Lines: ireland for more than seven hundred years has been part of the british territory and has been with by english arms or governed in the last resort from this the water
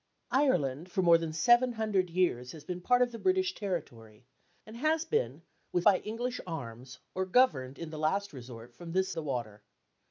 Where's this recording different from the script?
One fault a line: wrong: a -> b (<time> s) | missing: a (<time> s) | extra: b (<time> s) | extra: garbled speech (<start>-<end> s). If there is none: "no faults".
no faults